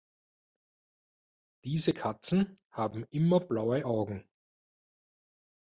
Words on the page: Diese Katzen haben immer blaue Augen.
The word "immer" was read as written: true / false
true